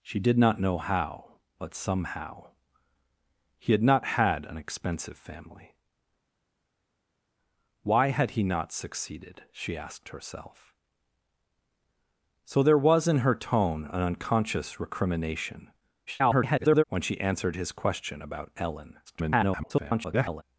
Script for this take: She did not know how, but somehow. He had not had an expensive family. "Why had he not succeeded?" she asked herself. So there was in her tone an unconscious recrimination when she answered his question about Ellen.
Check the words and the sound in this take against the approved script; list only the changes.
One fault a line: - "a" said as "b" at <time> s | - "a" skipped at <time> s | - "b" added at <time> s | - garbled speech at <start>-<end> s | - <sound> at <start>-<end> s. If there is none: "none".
- garbled speech at 16.1-16.8 s
- garbled speech at 19.1-20.4 s